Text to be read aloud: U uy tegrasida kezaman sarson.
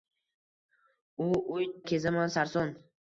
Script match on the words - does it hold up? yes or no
no